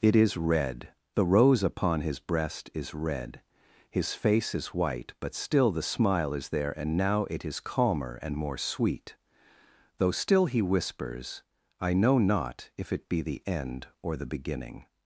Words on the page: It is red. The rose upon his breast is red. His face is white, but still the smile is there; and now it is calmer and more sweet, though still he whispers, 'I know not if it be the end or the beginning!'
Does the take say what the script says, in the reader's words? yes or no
yes